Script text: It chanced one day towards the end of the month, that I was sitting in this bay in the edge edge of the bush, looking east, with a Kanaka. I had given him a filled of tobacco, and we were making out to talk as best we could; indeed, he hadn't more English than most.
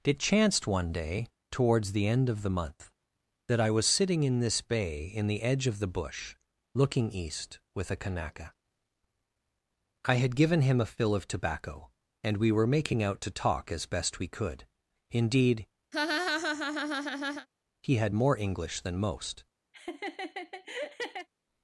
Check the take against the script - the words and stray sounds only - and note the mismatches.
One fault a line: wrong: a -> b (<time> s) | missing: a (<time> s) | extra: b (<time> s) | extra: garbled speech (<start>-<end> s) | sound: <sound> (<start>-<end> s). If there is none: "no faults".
missing: edge (5.7 s)
wrong: filled -> fill (10.9 s)
sound: laugh (15.9-17.5 s)
wrong: hadn't -> had (18.0 s)
sound: laugh (19.7-21.3 s)